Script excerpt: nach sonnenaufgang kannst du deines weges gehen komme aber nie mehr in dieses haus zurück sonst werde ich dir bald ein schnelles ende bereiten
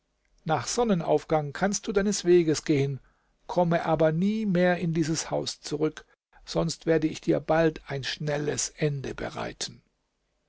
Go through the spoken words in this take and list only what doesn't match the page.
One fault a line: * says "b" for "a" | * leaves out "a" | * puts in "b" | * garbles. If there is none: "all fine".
all fine